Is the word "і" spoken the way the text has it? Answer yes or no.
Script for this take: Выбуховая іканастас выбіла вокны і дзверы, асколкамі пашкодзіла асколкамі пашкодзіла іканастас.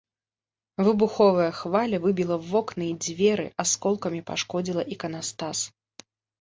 yes